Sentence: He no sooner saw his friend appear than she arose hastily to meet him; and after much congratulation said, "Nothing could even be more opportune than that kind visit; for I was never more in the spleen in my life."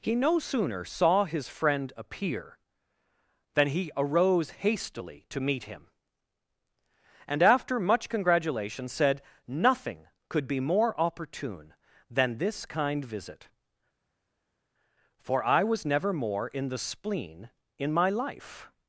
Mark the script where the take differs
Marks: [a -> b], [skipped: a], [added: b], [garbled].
He no sooner saw his friend appear than [she -> he] arose hastily to meet him; and after much congratulation said, "Nothing could [skipped: even] be more opportune than [that -> this] kind visit; for I was never more in the spleen in my life."